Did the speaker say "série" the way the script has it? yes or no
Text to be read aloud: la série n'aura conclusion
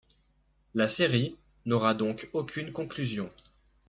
yes